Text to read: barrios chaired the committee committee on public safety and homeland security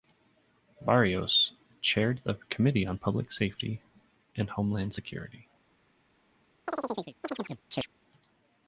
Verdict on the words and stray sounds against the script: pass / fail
fail